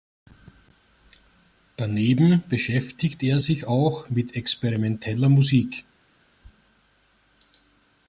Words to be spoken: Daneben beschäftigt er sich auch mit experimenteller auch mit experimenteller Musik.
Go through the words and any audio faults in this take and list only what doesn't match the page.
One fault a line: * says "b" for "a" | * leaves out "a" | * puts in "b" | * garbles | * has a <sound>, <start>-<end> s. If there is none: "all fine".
* leaves out "auch mit experimenteller"